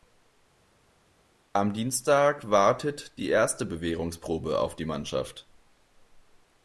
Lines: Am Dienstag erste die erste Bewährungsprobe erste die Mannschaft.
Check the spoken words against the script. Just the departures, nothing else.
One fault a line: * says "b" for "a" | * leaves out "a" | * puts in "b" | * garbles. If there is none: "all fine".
* says "wartet" for "erste"
* says "auf" for "erste"